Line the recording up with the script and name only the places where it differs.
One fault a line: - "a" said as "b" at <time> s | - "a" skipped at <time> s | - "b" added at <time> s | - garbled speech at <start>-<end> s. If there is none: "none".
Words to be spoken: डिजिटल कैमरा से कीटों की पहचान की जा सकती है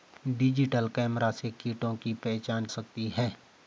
- "की जा" skipped at 2.6 s